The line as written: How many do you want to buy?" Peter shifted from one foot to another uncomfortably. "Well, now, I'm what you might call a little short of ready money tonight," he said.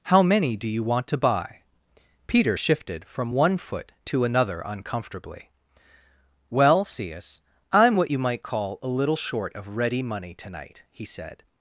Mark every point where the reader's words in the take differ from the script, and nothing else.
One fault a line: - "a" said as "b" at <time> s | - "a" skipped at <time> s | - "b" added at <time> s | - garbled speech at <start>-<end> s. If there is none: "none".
- "now" said as "cius" at 6.8 s